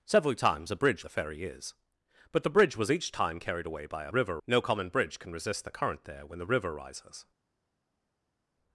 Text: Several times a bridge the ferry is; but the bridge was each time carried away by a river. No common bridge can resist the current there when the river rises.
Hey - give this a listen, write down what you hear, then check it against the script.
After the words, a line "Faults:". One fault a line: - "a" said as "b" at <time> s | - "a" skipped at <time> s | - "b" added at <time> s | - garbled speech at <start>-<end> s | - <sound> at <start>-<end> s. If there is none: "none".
Several times a bridge the ferry is; but the bridge was each time carried away by a river. No common bridge can resist the current there when the river rises.
Faults:
none